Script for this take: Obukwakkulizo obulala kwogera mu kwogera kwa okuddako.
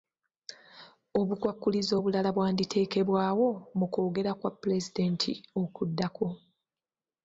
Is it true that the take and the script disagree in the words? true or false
true